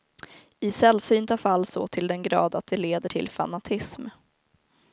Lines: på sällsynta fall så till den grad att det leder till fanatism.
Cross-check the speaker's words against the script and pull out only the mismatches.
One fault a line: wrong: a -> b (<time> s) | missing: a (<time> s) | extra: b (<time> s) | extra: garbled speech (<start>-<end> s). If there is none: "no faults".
wrong: på -> I (0.6 s)